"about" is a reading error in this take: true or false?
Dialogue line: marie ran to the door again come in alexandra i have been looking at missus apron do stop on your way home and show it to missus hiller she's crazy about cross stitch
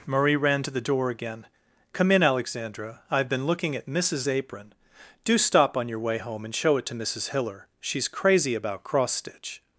false